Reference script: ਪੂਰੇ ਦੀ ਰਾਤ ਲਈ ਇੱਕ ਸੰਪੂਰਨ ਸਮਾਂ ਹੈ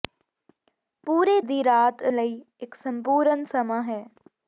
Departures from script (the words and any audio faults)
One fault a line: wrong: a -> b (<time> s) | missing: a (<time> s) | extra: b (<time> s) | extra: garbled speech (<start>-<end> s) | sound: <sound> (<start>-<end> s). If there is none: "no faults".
no faults